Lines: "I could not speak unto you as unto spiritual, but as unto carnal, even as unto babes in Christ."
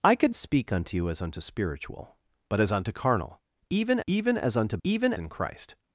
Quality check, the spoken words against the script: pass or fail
fail